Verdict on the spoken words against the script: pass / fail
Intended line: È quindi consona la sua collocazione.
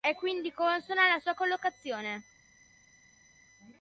pass